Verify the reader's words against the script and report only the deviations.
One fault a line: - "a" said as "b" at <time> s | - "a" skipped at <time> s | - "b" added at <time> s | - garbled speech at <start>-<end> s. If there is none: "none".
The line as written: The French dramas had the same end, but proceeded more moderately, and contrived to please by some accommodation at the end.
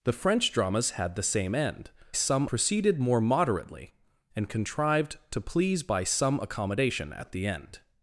- "but" said as "some" at 2.1 s